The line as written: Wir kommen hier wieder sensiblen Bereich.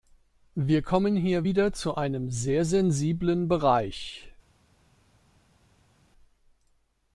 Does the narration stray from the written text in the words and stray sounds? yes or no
yes